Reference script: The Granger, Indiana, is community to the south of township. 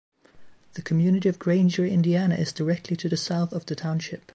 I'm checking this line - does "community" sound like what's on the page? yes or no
no